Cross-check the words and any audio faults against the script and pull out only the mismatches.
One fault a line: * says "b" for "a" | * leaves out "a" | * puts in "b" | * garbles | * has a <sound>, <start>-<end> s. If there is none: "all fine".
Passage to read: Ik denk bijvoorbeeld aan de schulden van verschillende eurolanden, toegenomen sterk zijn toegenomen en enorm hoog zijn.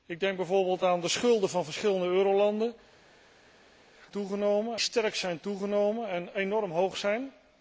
all fine